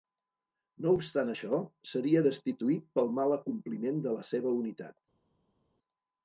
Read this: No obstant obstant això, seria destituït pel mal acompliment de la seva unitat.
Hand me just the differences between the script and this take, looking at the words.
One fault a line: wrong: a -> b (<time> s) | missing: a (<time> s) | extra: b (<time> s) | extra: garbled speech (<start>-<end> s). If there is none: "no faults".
missing: obstant (1.3 s)